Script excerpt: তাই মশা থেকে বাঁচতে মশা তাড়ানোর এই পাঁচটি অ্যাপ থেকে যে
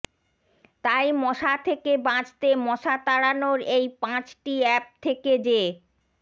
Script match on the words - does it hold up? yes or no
yes